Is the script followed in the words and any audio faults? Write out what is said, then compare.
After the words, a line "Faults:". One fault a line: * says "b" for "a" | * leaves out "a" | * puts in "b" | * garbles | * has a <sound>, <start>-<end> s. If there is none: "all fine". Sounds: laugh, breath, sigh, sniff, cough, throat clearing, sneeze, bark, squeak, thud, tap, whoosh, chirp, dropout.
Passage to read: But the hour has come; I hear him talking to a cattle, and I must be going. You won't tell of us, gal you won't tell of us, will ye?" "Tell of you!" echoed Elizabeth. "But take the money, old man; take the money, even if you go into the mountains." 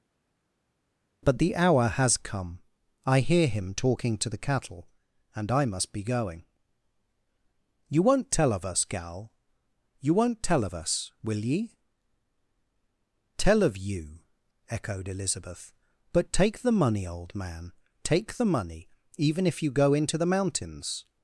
But the hour has come; I hear him talking to the cattle, and I must be going. You won't tell of us, gal you won't tell of us, will ye?" "Tell of you!" echoed Elizabeth. "But take the money, old man; take the money, even if you go into the mountains."
Faults:
* says "the" for "a"